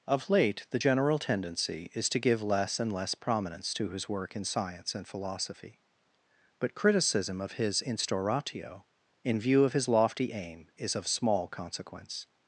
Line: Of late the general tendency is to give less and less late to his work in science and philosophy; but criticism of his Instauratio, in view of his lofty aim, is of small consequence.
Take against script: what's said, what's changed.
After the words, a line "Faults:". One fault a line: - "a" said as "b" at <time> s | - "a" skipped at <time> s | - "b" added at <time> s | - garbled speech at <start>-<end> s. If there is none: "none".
Of late the general tendency is to give less and less prominence to his work in science and philosophy; but criticism of his Instauratio, in view of his lofty aim, is of small consequence.
Faults:
- "late" said as "prominence" at 3.1 s